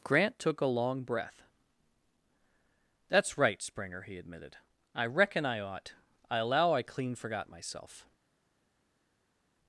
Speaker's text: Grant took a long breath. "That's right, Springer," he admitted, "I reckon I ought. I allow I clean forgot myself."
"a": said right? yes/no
yes